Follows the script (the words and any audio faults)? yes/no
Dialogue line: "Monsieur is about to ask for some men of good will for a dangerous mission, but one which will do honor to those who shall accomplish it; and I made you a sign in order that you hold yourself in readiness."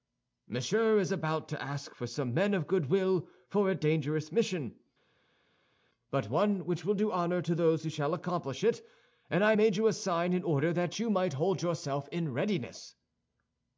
no